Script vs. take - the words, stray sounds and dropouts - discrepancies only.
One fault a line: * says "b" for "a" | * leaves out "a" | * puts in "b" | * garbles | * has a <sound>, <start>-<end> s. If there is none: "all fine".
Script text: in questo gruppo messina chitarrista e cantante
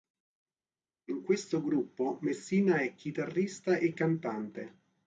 * puts in "è"